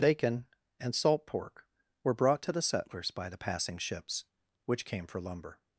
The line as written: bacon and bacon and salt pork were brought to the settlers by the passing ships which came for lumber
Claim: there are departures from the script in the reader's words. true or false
true